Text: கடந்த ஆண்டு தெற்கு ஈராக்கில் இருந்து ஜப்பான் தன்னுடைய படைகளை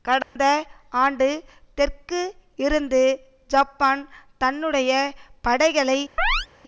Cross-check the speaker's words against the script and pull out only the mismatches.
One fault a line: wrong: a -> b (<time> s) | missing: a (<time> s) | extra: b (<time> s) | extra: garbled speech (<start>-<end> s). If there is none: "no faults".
missing: ஈராக்கில் (2.2 s)